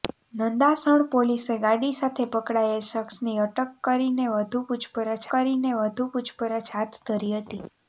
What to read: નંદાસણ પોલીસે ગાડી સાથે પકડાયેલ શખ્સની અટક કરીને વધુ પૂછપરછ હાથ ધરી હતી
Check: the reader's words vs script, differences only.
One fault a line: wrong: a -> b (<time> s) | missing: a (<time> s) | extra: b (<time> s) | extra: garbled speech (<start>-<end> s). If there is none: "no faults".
extra: કરીને વધુ પૂછપરછ (5.3 s)